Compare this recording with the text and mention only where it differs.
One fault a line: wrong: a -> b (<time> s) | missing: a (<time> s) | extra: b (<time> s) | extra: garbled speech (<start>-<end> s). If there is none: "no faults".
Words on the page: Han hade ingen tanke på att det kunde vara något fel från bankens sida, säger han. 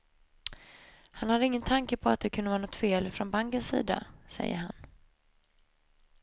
no faults